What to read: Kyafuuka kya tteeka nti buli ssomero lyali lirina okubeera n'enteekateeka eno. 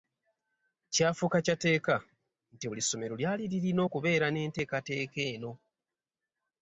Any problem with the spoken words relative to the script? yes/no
no